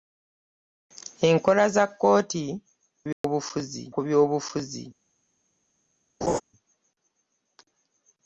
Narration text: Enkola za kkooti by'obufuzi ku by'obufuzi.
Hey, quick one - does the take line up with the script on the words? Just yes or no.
yes